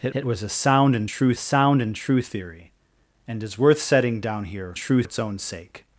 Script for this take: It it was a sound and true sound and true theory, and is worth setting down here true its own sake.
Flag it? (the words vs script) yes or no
no